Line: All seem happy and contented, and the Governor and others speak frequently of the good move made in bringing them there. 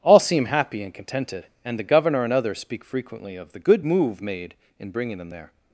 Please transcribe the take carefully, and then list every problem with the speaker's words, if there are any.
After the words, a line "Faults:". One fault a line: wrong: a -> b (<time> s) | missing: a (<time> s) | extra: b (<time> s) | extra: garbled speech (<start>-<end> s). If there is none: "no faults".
All seem happy and contented, and the Governor and others speak frequently of the good move made in bringing them there.
Faults:
no faults